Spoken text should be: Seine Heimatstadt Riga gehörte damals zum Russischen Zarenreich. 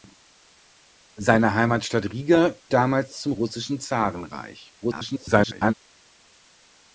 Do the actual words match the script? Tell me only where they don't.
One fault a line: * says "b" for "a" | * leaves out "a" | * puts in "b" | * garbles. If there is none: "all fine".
* leaves out "gehörte"
* garbles